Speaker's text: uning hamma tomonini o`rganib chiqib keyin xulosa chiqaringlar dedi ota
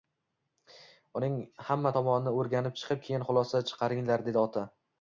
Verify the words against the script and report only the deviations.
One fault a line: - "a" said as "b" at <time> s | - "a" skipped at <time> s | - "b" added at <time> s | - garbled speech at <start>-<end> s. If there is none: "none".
none